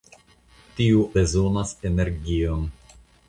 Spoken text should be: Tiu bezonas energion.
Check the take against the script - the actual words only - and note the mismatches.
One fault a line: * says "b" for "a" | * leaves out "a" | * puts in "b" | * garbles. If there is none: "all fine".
all fine